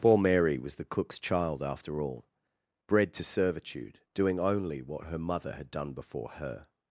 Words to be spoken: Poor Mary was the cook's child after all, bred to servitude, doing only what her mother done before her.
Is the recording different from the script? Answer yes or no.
yes